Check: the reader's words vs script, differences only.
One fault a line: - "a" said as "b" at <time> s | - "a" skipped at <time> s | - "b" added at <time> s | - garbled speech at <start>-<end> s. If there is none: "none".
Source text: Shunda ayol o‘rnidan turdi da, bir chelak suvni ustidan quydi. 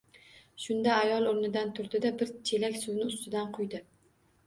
none